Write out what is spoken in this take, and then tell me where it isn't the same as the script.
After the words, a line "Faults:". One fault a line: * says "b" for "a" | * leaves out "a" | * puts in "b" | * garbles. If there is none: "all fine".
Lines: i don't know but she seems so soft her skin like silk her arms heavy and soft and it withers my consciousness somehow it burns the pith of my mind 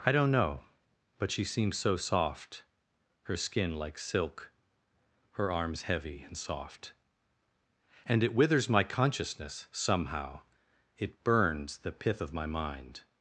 i don't know but she seems so soft her skin like silk her arms heavy and soft and it withers my consciousness somehow it burns the pith of my mind
Faults:
all fine